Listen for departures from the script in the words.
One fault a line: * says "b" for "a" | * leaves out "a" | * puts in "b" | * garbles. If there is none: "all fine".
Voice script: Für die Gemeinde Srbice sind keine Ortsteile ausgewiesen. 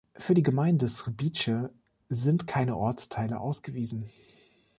all fine